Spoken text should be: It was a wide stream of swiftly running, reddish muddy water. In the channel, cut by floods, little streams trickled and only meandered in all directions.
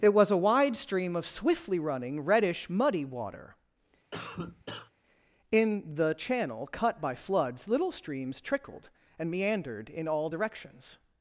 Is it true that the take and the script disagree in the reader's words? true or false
true